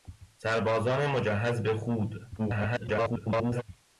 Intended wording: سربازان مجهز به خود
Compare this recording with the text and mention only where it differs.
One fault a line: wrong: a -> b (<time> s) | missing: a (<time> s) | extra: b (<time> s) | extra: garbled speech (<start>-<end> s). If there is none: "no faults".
extra: garbled speech (2.4-3.6 s)